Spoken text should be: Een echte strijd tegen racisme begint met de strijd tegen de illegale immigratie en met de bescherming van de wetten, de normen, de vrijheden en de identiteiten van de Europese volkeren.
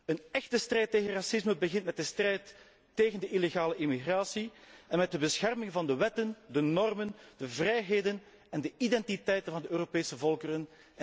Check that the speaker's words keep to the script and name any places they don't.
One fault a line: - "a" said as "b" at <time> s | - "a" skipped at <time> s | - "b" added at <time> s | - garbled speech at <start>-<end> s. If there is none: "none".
none